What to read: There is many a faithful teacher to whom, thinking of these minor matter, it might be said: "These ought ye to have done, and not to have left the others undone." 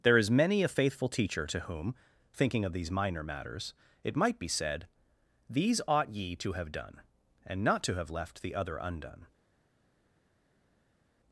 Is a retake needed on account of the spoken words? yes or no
yes